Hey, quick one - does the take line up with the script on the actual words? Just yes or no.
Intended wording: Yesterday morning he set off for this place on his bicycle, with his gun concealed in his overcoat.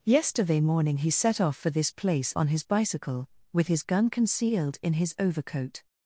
yes